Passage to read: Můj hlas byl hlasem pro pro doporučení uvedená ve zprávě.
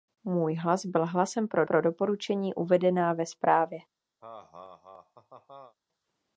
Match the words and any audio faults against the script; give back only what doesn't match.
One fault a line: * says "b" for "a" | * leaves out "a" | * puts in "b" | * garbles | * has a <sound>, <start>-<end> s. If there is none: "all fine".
* has a laugh, 4.2-5.8 s